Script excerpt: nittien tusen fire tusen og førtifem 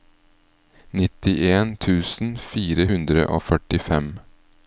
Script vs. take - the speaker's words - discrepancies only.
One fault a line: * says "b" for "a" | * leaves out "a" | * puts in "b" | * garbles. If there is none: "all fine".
* says "hundre" for "tusen"